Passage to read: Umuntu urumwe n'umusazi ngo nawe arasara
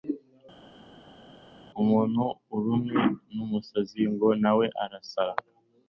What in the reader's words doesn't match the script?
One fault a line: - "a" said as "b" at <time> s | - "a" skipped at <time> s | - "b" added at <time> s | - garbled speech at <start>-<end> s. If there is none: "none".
none